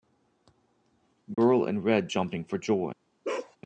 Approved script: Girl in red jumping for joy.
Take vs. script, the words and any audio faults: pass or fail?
fail